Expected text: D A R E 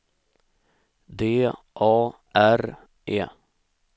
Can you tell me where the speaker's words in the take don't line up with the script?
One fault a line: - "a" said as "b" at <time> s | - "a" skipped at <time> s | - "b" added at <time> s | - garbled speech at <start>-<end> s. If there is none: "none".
none